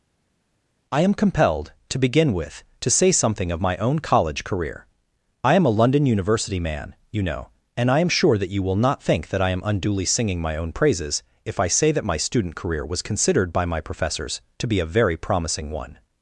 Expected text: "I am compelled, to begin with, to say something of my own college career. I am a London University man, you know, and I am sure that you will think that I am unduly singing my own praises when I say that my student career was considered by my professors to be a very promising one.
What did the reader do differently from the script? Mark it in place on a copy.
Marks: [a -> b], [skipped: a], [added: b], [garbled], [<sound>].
"I am compelled, to begin with, to say something of my own college career. I am a London University man, you know, and I am sure that you will [added: not] think that I am unduly singing my own praises [when -> if] I say that my student career was considered by my professors to be a very promising one.